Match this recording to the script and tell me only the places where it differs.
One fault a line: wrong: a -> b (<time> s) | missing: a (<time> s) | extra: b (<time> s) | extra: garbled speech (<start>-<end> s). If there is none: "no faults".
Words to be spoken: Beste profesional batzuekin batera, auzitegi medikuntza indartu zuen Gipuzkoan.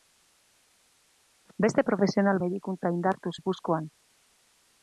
missing: batzuekin batera auzitegi (2.4 s)
missing: zuen (3.3 s)